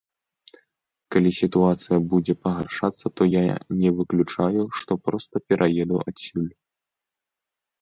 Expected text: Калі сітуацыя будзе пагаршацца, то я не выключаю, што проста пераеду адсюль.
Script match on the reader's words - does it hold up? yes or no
yes